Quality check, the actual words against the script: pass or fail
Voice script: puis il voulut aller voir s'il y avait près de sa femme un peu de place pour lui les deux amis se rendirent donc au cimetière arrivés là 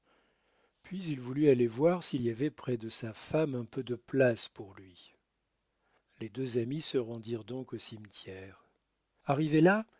pass